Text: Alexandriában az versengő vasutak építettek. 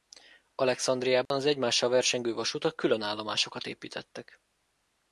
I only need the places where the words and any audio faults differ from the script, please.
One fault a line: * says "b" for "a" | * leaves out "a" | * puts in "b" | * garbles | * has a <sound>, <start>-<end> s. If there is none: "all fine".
* has a dropout, 1.3-1.3 s
* puts in "egymással"
* puts in "külön állomásokat"